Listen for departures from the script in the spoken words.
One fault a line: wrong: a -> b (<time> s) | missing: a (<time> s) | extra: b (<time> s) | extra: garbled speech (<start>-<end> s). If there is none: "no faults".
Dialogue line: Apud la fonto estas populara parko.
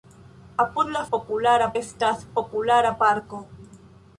wrong: fonto -> populara (1.1 s)